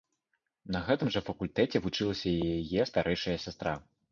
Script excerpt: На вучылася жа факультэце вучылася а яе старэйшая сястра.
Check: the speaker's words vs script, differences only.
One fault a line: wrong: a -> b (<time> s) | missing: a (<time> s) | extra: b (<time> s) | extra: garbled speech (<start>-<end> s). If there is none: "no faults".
wrong: вучылася -> гэтым (0.9 s)
wrong: а -> і (2.3 s)